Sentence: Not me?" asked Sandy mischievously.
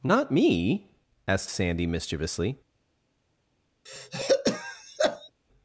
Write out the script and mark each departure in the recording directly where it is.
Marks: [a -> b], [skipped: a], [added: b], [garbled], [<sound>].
Not me?" asked Sandy mischievously. [throat clearing]